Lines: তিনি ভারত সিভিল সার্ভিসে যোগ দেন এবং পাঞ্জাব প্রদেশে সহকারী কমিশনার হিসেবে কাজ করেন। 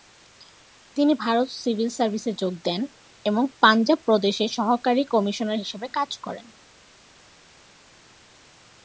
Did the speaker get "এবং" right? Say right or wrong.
right